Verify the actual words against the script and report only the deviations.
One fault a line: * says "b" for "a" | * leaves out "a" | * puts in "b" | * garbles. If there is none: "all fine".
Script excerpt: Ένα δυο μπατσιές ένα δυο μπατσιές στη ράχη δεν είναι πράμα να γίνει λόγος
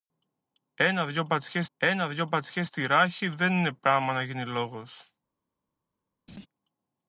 all fine